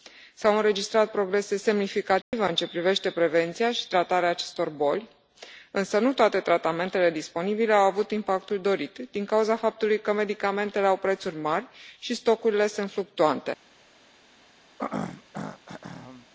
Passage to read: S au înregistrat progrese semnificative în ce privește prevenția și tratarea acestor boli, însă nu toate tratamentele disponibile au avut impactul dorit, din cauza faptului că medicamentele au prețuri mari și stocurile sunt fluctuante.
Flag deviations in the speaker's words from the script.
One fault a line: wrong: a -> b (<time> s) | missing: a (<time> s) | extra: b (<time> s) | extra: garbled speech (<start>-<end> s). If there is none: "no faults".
no faults